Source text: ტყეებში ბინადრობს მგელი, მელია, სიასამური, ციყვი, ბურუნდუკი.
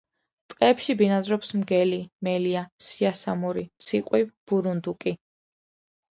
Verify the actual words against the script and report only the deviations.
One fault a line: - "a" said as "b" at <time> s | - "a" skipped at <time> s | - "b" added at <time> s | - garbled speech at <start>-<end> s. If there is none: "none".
none